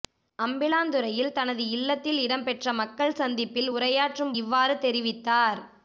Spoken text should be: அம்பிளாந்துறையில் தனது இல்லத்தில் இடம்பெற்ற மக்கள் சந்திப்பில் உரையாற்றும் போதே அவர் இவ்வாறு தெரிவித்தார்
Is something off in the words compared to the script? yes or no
yes